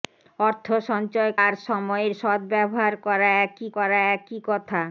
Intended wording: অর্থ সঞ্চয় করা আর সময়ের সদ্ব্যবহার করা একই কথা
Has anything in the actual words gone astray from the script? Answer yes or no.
yes